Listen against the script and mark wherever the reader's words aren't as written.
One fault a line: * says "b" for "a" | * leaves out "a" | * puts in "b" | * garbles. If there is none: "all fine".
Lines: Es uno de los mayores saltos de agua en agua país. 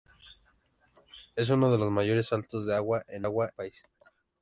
all fine